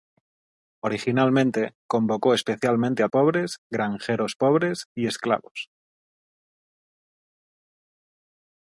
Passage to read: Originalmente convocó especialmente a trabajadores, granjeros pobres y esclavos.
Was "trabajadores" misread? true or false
true